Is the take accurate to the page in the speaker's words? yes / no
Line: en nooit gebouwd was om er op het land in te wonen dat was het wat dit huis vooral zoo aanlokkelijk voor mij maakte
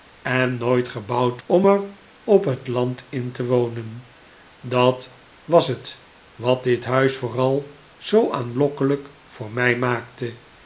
no